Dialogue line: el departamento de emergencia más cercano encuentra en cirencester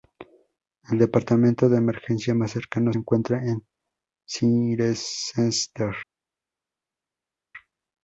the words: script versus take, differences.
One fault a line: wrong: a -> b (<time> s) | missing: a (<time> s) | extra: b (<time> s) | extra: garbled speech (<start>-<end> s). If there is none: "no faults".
no faults